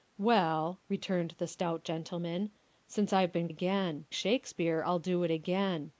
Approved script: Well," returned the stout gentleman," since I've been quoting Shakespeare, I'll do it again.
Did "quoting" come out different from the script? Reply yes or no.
yes